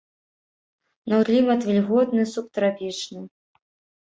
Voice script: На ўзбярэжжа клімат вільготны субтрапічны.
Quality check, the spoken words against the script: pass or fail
fail